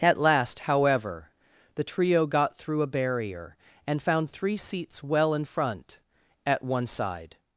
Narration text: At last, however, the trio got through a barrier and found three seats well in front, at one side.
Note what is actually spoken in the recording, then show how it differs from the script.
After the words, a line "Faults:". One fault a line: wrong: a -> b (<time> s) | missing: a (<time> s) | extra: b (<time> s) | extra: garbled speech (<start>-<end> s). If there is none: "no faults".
At last, however, the trio got through a barrier and found three seats well in front, at one side.
Faults:
no faults